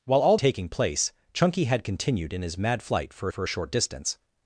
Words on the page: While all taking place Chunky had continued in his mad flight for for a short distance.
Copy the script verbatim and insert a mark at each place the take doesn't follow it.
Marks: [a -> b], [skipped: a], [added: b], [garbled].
While all taking place Chunky had continued in his mad flight for for a short distance.